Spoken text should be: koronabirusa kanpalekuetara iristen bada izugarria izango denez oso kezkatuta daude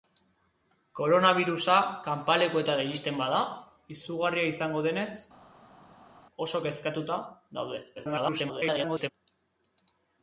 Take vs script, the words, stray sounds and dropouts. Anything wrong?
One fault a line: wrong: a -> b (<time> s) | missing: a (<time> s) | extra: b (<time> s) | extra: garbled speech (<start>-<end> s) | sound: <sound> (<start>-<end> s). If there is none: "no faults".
extra: garbled speech (8.0-9.1 s)